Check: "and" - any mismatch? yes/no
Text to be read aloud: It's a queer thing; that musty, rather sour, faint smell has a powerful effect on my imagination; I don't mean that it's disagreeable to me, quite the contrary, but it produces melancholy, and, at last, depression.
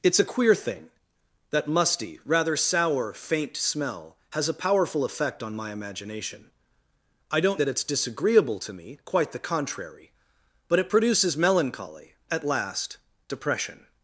yes